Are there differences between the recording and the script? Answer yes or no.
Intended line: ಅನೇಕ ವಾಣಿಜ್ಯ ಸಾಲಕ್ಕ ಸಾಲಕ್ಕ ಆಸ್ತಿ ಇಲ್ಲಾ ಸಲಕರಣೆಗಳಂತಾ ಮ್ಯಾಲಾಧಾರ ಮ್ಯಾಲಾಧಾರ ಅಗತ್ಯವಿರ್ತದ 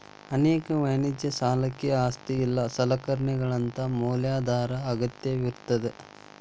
yes